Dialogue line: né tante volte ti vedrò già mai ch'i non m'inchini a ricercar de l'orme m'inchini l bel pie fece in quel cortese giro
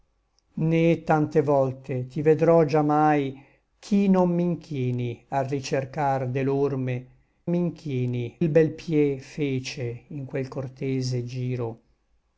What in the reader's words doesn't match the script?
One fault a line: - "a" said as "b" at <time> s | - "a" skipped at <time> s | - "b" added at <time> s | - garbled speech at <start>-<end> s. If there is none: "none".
none